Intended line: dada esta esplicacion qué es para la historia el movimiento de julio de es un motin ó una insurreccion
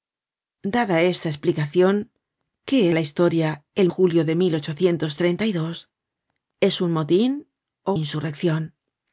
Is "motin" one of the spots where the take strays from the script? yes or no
no